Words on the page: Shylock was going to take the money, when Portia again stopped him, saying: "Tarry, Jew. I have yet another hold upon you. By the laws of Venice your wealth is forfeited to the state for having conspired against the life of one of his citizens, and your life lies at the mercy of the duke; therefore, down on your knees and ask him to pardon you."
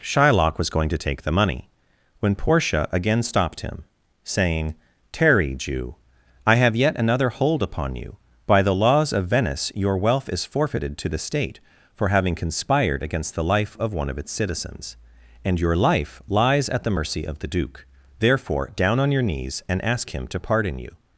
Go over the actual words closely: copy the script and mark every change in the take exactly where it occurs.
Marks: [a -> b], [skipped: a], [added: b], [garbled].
Shylock was going to take the money, when Portia again stopped him, saying: "Tarry, Jew. I have yet another hold upon you. By the laws of Venice your wealth is forfeited to the state for having conspired against the life of one of [his -> its] citizens, and your life lies at the mercy of the duke; therefore, down on your knees and ask him to pardon you."